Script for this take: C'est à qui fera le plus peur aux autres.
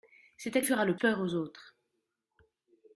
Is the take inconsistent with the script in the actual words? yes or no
yes